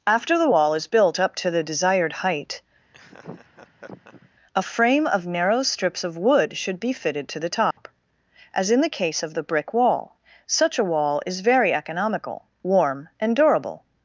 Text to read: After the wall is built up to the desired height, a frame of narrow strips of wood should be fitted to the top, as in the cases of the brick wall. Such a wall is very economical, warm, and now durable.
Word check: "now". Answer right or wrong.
wrong